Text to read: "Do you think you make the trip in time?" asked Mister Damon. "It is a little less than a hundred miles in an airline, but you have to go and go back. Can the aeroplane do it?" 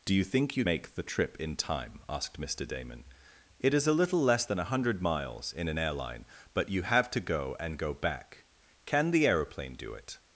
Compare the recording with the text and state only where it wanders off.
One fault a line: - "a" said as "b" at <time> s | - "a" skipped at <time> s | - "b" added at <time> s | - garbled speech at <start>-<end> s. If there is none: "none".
none